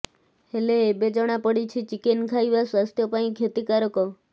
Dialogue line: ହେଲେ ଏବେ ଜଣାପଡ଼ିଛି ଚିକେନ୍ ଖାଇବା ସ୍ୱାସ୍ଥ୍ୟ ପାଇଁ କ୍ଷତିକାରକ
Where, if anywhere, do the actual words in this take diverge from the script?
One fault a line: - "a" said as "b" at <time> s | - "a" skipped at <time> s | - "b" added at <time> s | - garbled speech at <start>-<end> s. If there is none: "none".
none